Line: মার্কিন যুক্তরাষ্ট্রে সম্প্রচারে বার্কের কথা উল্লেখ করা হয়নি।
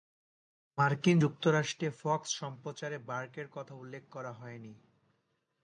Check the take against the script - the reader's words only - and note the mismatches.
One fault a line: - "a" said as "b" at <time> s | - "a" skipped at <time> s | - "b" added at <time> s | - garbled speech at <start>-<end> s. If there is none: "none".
- "ফক্স" added at 2.0 s